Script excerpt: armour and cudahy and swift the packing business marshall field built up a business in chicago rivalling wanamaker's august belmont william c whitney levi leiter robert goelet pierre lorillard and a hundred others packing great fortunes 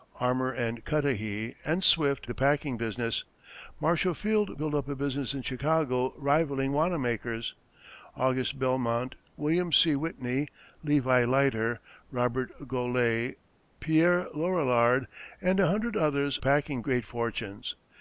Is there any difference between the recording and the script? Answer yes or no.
no